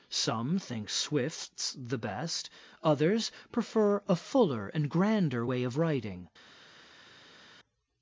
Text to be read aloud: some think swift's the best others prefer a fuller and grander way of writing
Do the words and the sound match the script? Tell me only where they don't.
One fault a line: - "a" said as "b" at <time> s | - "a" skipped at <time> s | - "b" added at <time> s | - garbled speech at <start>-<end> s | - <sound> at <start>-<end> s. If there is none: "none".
none